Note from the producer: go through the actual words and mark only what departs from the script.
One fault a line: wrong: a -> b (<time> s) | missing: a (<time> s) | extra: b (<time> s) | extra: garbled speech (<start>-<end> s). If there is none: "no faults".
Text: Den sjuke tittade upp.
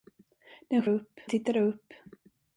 wrong: sjuke -> upp (0.9 s)